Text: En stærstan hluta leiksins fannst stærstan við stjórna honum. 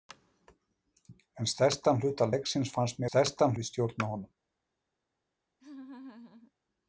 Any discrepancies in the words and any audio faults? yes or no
yes